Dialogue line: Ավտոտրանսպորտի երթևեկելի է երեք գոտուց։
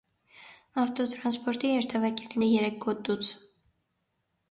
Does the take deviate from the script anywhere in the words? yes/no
no